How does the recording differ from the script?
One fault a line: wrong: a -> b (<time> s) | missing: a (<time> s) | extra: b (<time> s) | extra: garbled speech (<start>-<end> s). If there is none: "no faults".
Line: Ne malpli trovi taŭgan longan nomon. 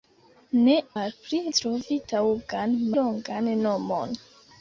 no faults